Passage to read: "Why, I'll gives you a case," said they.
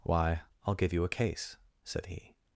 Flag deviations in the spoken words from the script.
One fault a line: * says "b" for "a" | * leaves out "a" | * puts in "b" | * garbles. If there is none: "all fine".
* says "give" for "gives"
* says "he" for "they"